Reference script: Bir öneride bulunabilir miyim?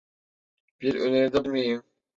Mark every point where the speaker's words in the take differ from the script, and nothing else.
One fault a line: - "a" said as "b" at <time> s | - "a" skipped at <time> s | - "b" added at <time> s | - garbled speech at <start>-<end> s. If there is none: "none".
- "bulunabilir" skipped at 1.5 s